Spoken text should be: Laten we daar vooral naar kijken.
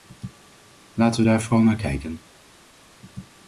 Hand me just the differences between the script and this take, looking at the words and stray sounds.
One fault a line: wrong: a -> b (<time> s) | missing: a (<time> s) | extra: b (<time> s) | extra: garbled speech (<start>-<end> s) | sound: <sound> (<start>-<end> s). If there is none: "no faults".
no faults